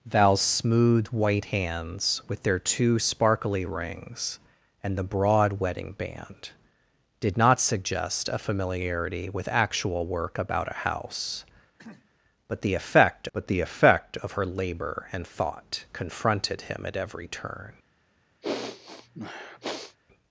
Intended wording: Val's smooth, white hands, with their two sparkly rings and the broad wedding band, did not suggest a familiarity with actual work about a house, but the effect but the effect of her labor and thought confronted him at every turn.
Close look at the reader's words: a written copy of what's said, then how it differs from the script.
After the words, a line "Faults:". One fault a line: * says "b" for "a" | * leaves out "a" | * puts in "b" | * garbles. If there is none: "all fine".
Val's smooth, white hands, with their two sparkly rings and the broad wedding band, did not suggest a familiarity with actual work about a house, but the effect but the effect of her labor and thought confronted him at every turn.
Faults:
all fine